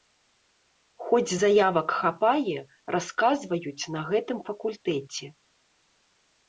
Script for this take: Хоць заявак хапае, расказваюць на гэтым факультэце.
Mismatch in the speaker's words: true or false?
false